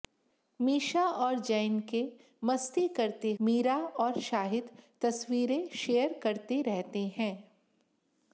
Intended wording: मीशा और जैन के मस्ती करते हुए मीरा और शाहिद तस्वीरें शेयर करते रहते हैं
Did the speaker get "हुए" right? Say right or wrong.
wrong